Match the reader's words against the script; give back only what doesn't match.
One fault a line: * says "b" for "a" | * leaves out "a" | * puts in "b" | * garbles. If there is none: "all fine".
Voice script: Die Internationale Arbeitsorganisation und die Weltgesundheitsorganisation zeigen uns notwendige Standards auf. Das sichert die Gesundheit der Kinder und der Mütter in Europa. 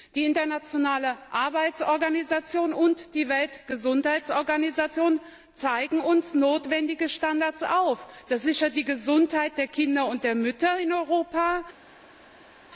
all fine